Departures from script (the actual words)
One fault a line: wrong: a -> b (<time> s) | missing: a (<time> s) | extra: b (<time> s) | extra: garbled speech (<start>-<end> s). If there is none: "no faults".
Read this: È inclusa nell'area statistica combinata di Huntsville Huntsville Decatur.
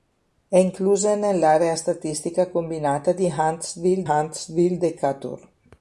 no faults